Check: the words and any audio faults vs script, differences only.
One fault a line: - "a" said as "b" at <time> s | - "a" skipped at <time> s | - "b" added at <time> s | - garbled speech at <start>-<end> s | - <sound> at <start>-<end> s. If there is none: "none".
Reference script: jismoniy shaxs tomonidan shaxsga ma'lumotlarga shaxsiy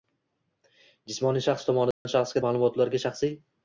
- dropout at 1.9-2.1 s